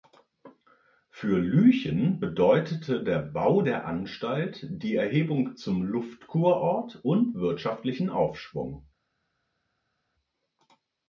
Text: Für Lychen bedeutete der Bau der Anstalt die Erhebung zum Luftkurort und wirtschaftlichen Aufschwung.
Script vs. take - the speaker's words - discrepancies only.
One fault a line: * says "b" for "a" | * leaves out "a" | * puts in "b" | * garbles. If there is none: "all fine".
all fine